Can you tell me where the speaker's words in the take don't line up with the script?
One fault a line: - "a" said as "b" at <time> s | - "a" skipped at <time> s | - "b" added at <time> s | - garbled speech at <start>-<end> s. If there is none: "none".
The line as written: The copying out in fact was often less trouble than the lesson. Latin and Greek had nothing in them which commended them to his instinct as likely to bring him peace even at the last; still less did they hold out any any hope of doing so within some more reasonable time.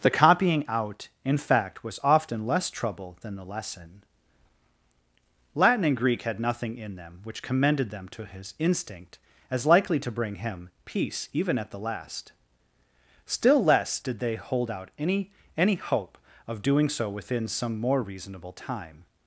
none